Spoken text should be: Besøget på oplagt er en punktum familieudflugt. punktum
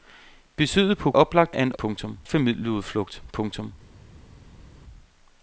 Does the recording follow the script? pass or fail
pass